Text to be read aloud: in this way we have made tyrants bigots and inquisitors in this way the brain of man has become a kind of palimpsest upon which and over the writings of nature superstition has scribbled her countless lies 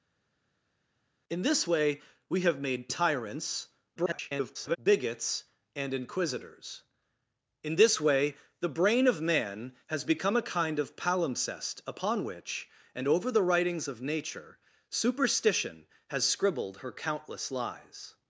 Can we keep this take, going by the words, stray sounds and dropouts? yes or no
no